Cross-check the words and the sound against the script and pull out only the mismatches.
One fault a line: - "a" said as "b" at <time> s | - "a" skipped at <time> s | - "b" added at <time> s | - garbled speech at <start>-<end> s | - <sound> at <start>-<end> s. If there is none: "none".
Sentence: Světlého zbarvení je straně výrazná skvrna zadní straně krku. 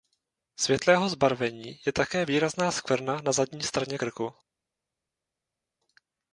- "straně" said as "také" at 1.9 s
- "na" added at 3.2 s